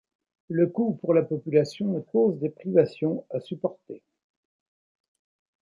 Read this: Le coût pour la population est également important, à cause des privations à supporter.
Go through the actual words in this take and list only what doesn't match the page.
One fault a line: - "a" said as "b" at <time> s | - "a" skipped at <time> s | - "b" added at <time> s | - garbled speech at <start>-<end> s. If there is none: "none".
- "également important à" skipped at 2.1 s